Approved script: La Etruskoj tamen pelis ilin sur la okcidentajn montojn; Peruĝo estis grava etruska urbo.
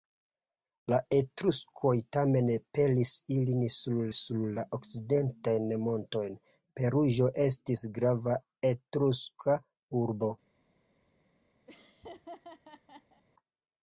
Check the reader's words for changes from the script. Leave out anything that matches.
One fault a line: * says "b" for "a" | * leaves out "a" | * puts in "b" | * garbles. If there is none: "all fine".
* puts in "sur"